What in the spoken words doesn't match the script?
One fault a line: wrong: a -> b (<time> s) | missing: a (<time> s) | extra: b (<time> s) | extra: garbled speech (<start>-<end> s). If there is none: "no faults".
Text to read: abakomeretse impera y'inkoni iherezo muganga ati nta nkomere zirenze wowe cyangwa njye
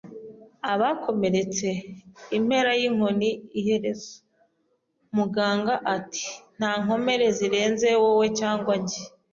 no faults